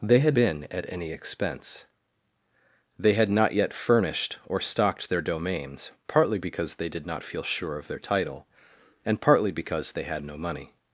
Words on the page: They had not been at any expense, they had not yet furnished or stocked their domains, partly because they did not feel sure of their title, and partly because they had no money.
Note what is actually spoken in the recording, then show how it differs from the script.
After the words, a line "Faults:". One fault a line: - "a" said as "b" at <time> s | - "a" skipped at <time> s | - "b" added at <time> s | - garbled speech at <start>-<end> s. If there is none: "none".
They had been at any expense, they had not yet furnished or stocked their domains, partly because they did not feel sure of their title, and partly because they had no money.
Faults:
- "not" skipped at 0.4 s